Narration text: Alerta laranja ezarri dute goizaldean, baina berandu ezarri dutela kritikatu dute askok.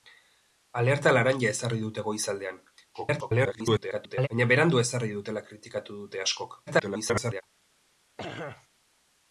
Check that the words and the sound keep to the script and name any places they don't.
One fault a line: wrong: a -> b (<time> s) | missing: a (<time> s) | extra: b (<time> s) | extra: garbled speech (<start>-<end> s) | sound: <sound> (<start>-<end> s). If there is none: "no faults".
extra: garbled speech (2.9-4.3 s)
extra: garbled speech (6.7-7.4 s)
sound: throat clearing (8.2-8.7 s)